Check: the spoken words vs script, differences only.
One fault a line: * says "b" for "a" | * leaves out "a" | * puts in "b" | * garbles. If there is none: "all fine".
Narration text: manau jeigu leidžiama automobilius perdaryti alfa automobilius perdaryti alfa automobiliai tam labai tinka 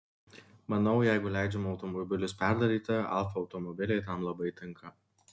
* leaves out "automobilius perdaryti alfa"